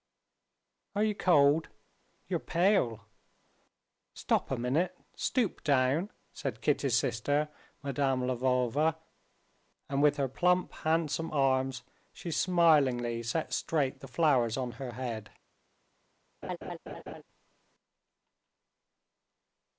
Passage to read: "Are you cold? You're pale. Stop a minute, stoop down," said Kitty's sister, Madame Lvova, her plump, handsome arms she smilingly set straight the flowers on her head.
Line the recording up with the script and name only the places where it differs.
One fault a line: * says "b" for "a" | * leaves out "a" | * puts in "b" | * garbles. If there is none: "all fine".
* puts in "and with"